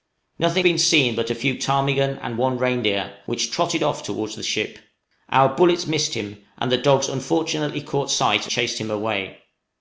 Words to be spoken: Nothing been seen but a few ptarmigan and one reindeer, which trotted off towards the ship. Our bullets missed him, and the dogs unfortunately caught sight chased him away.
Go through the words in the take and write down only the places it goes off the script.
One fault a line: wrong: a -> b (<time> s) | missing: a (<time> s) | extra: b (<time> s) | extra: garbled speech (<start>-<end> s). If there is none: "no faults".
no faults